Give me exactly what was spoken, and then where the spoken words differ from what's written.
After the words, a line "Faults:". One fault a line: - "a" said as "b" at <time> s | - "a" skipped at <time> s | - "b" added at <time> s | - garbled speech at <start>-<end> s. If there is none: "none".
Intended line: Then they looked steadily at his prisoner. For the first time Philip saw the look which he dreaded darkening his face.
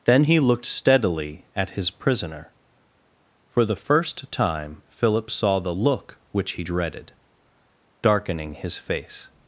Then he looked steadily at his prisoner. For the first time Philip saw the look which he dreaded darkening his face.
Faults:
- "they" said as "he" at 0.2 s